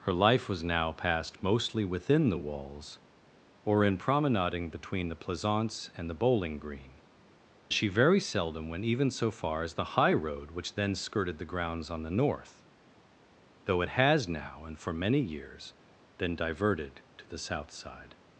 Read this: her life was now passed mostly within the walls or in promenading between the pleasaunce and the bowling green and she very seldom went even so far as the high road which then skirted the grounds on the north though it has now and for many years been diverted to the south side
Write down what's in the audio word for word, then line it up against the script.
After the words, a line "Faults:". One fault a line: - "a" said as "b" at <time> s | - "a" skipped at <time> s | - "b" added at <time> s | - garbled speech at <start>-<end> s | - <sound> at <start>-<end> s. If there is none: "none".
her life was now passed mostly within the walls or in promenading between the pleasaunce and the bowling green she very seldom went even so far as the high road which then skirted the grounds on the north though it has now and for many years been diverted to the south side
Faults:
- "and" skipped at 7.0 s